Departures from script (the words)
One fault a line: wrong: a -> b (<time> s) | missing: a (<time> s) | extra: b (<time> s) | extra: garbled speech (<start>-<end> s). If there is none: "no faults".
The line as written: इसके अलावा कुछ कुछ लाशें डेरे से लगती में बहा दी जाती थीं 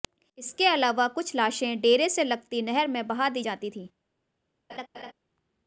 missing: कुछ (1.3 s)
extra: नहर (2.6 s)